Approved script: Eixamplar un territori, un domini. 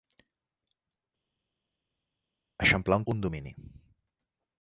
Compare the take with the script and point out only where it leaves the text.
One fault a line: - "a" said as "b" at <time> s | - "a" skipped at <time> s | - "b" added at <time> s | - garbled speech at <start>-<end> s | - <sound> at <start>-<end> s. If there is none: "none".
- "territori" skipped at 3.1 s